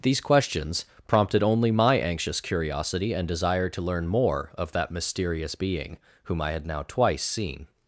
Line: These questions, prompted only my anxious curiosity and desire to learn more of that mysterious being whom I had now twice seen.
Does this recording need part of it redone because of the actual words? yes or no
no